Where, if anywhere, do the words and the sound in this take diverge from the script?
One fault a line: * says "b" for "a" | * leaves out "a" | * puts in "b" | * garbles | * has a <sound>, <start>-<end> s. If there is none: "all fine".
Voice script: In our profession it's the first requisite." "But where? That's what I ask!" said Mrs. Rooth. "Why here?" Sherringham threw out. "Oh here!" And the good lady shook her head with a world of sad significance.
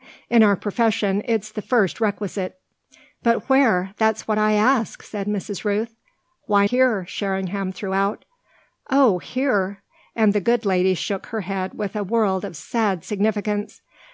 all fine